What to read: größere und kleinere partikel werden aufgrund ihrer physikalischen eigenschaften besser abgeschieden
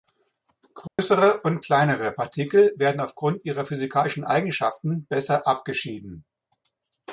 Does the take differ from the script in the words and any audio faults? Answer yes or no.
yes